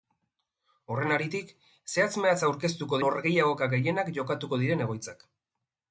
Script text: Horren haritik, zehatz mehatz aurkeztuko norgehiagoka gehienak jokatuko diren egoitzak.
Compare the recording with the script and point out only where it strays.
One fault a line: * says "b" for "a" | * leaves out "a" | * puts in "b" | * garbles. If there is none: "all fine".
all fine